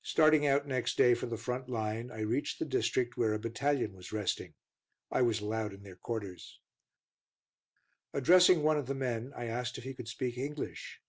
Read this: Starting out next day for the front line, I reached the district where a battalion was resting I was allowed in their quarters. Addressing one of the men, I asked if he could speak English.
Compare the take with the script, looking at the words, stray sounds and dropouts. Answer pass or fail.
pass